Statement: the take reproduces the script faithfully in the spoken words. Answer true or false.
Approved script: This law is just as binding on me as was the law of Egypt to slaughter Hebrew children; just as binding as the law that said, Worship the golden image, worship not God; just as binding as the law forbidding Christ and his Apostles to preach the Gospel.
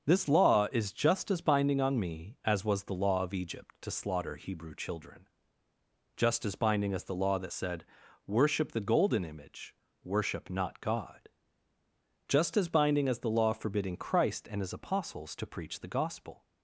true